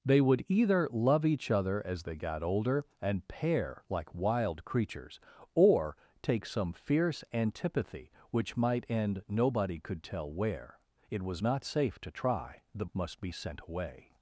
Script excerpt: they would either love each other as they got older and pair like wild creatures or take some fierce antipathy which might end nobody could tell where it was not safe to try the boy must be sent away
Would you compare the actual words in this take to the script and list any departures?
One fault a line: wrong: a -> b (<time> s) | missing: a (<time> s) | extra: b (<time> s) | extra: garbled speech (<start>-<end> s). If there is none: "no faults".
missing: boy (12.9 s)